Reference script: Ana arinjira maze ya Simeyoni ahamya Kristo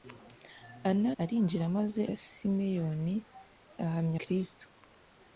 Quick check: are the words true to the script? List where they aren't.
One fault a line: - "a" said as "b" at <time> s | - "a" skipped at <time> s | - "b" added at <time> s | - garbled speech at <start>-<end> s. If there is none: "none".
none